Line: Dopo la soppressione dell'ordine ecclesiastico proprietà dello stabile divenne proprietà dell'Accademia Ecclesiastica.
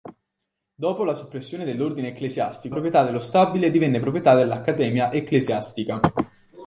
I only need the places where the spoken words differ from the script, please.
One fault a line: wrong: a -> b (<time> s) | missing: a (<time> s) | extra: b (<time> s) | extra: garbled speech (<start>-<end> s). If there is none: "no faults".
no faults